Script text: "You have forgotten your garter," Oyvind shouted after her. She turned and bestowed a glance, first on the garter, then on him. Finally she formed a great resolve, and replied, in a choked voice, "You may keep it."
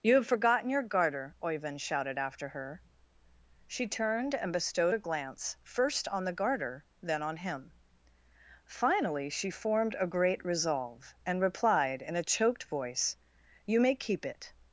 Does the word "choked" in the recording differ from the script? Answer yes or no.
no